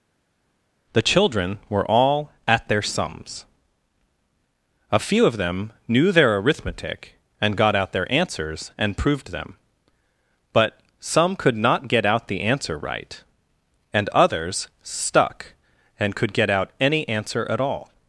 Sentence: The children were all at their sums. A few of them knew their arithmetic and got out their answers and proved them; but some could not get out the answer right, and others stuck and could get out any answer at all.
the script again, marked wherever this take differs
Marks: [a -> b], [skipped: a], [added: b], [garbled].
The children were all at their sums. A few of them knew their arithmetic and got out their answers and proved them; but some could not get out the answer right, and others stuck and could get out any answer at all.